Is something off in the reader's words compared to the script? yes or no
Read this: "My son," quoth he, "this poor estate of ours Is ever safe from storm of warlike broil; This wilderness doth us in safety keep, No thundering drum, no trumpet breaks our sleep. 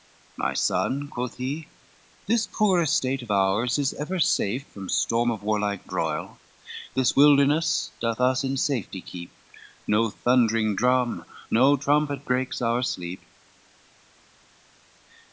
no